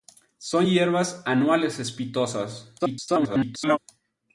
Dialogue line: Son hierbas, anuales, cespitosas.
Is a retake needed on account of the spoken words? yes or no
yes